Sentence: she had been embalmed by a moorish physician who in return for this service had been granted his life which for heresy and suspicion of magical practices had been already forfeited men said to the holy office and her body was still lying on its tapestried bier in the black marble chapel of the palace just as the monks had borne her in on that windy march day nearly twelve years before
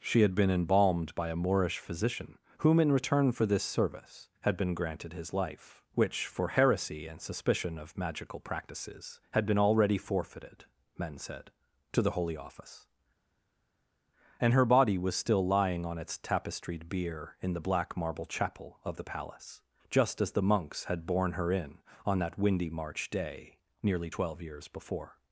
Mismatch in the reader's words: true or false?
true